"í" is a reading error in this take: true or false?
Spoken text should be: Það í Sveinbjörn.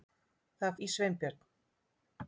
false